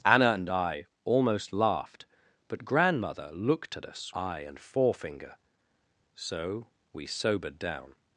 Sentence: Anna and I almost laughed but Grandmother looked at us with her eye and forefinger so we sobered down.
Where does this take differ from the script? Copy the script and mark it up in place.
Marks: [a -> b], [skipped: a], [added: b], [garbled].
Anna and I almost laughed but Grandmother looked at us [skipped: with her] eye and forefinger so we sobered down.